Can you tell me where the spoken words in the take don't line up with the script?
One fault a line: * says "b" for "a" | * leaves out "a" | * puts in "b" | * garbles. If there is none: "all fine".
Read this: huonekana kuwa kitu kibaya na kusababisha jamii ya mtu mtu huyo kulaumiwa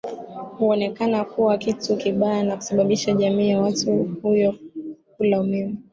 * leaves out "mtu"